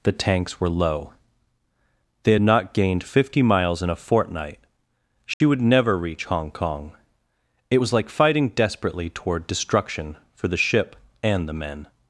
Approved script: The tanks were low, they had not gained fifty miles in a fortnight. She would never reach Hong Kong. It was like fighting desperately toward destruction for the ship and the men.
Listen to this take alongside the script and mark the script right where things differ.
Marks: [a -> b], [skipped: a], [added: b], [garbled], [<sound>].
The tanks were low, they had not gained fifty miles in a fortnight. She [dropout] would never reach Hong Kong. It was like fighting desperately toward destruction for the ship and the men.